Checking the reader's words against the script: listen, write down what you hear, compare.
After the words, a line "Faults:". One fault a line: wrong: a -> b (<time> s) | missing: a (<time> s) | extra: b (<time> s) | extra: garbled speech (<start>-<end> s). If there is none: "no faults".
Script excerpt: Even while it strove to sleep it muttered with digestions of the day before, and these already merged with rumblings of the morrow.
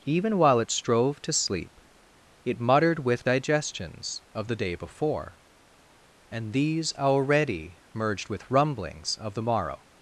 Even while it strove to sleep it muttered with digestions of the day before, and these already merged with rumblings of the morrow.
Faults:
no faults